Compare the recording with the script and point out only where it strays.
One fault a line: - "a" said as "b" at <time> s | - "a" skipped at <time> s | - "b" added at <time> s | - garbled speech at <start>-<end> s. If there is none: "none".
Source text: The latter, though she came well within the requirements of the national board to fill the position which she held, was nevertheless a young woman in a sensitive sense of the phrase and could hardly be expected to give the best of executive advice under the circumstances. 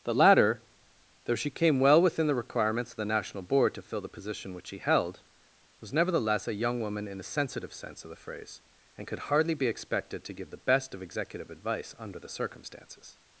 none